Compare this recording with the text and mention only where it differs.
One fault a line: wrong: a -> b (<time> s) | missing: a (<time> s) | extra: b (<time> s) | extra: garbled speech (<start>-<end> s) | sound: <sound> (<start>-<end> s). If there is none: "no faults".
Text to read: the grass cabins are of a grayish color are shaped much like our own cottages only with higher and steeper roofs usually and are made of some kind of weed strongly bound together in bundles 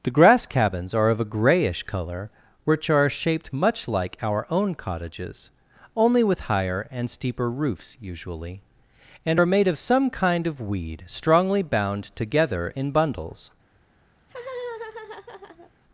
extra: which (2.6 s)
sound: laugh (14.2-15.7 s)